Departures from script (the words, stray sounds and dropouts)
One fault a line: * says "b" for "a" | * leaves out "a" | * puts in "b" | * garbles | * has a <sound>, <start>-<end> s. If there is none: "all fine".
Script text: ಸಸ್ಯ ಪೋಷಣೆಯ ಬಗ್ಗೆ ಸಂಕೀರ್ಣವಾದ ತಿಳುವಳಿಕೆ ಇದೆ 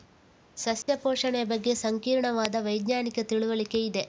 * has a dropout, 0.8-0.9 s
* puts in "ವೈಜ್ಞಾನಿಕ"